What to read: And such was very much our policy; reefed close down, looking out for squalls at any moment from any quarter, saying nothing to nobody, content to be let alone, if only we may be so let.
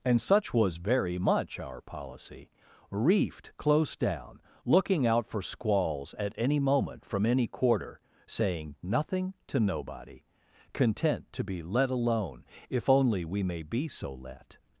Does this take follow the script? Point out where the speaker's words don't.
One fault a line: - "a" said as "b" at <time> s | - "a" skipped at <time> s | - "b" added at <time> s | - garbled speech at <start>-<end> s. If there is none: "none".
none